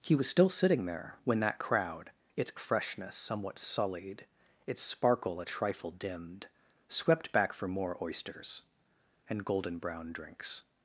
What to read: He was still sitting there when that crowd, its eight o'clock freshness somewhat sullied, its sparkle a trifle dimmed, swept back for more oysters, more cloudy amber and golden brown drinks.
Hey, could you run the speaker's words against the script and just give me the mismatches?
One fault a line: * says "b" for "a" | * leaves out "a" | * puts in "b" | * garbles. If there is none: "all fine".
* leaves out "eight o'clock"
* leaves out "more cloudy amber"